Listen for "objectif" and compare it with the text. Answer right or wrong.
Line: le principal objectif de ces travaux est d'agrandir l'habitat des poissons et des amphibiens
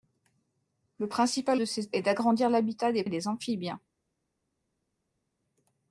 wrong